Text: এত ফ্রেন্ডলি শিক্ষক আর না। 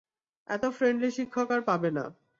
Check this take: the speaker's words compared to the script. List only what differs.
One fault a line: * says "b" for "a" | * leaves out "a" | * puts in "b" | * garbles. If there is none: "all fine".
* puts in "পাবে"